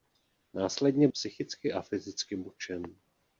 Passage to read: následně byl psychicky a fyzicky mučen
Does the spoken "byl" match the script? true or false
false